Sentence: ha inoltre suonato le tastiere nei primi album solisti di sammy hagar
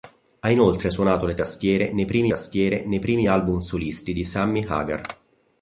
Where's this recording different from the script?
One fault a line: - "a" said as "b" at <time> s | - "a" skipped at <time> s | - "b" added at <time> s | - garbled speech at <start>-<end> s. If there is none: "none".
- "tastiere nei primi" added at 2.3 s